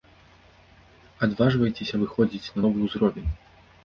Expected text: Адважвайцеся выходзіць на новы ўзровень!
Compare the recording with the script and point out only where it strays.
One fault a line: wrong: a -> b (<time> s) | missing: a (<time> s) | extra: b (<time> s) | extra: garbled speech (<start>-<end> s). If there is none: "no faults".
no faults